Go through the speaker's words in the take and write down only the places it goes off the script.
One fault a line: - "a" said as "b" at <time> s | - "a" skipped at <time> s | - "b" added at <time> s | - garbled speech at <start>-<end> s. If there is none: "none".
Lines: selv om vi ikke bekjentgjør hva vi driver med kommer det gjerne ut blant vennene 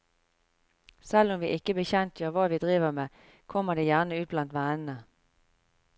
none